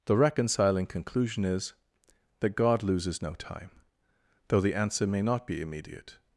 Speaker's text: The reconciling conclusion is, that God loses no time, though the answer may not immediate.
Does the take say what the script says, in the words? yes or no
no